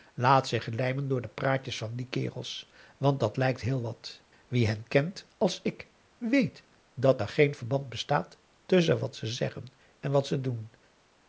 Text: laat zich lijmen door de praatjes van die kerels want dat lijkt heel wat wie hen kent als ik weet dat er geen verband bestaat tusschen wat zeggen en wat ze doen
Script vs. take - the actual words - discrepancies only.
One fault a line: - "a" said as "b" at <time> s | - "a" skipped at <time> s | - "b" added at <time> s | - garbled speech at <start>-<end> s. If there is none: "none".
- "ze" added at 9.2 s